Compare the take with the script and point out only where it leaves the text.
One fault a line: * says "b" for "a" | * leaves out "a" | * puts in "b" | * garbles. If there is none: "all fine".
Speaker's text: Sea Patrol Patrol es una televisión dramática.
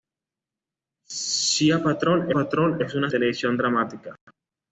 all fine